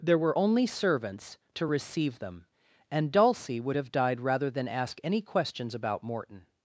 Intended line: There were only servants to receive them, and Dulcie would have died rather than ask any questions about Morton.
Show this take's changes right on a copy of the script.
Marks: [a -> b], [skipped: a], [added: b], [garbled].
There were only servants to receive them, and Dulcie would have died rather than ask any questions about Morton.